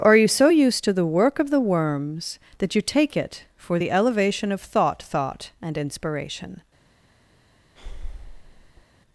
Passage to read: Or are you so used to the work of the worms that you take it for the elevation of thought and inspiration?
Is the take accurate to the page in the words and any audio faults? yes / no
no